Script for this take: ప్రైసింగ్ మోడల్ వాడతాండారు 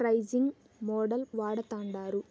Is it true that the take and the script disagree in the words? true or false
false